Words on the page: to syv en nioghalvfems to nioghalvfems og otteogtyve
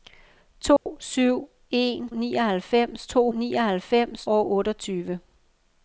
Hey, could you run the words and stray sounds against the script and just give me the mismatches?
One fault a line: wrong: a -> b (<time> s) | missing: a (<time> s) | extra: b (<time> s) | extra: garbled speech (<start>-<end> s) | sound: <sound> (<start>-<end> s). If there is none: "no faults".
sound: dropout (0.8-0.9 s)